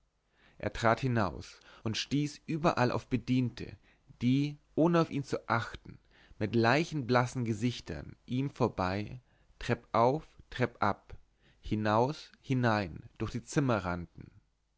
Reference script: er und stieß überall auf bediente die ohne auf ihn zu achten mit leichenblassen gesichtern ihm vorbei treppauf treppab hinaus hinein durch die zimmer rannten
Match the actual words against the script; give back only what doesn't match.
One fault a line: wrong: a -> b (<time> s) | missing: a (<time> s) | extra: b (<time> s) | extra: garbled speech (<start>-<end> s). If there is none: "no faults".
extra: trat hinaus (0.7 s)